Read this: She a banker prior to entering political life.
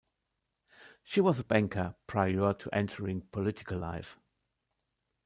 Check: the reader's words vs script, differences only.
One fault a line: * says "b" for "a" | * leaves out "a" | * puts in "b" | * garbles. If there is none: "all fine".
* puts in "was"